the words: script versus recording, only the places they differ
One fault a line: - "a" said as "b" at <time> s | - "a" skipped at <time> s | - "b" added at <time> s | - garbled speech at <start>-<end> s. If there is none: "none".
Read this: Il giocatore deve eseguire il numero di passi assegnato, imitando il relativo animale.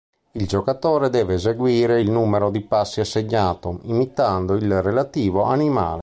none